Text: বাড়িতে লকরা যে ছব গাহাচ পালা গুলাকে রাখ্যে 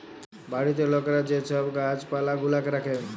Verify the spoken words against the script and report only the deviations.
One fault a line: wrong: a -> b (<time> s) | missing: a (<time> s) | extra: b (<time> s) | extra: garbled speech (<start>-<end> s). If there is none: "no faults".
no faults